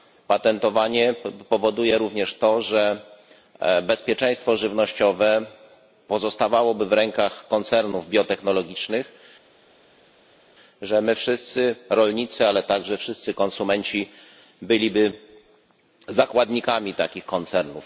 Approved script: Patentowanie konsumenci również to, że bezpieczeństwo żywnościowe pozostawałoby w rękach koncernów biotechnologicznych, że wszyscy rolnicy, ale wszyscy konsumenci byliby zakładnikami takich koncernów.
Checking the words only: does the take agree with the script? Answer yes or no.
no